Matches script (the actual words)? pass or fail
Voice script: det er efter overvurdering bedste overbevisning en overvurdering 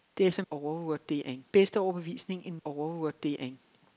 pass